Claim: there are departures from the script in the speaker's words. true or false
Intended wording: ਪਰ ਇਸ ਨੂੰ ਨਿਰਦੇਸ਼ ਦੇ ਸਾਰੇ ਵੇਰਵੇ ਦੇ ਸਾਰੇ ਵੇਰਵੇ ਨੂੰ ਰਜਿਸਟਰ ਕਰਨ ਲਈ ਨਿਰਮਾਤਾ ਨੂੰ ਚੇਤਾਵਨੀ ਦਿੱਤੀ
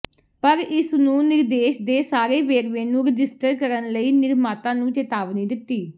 true